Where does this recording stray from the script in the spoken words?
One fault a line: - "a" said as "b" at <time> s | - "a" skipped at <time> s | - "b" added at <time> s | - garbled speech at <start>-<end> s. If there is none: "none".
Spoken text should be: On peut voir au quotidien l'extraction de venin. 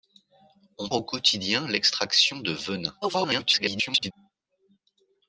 - "peut voir" skipped at 0.9 s
- garbled speech at 3.0-4.1 s